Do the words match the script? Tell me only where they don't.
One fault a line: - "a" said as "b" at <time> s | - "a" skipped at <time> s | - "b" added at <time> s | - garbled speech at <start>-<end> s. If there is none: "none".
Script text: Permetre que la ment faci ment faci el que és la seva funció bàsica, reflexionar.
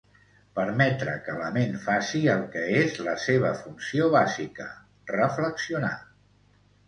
- "ment faci" skipped at 2.2 s